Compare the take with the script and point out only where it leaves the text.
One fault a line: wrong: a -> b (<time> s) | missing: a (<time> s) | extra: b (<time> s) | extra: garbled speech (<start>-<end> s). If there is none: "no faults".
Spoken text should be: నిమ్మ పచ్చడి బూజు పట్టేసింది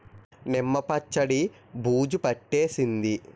no faults